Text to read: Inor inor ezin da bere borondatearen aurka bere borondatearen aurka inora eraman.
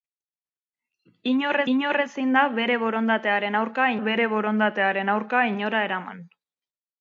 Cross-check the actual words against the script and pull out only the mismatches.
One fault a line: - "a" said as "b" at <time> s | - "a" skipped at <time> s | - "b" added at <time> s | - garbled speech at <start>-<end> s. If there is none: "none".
none